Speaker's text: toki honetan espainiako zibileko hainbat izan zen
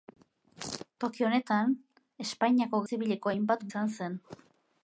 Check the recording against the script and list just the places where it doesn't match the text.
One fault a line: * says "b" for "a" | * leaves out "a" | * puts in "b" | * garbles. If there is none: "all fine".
all fine